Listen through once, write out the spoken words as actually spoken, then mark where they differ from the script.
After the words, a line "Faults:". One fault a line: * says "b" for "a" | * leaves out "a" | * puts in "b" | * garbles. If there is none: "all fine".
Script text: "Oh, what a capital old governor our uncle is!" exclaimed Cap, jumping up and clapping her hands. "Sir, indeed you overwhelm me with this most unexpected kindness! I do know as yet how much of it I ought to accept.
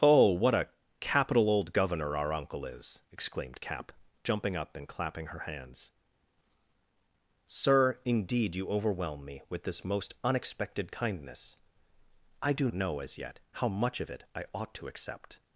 "Oh, what a capital old governor our uncle is!" exclaimed Cap, jumping up and clapping her hands. "Sir, indeed you overwhelm me with this most unexpected kindness! I do know as yet how much of it I ought to accept.
Faults:
all fine